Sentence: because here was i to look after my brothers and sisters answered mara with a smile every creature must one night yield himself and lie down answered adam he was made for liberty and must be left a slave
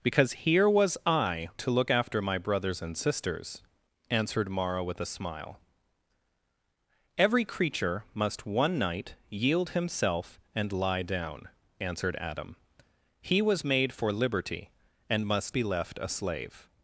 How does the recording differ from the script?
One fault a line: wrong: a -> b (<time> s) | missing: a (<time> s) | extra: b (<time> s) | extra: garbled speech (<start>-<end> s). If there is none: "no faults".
no faults